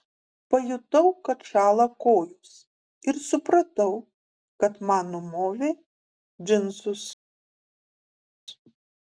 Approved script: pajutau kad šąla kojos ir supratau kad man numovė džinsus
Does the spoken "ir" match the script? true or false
true